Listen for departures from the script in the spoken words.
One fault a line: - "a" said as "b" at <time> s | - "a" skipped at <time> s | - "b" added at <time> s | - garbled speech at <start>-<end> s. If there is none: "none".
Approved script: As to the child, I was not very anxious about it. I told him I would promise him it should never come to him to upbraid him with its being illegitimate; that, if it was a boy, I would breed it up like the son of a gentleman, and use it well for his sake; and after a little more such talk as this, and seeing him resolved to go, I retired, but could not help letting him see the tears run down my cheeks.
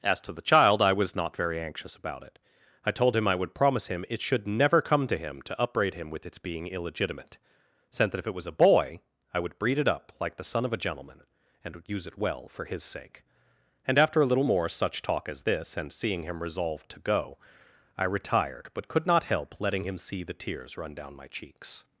- "sent" added at 7.9 s
- "would" added at 11.8 s